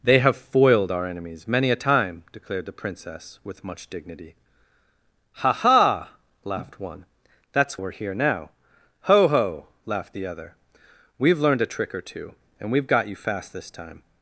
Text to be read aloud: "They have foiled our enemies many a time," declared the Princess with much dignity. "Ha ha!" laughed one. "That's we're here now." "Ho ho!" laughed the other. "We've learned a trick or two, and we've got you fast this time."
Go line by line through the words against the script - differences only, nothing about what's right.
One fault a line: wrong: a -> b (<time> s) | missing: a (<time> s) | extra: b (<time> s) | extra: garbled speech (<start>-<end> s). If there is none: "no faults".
no faults